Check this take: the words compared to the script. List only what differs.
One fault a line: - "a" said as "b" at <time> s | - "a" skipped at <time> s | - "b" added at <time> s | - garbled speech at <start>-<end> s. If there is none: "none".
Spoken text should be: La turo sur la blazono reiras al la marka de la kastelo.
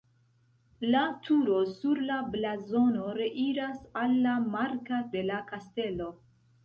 none